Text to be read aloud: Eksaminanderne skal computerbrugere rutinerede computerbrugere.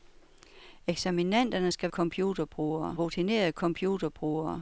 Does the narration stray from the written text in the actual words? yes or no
no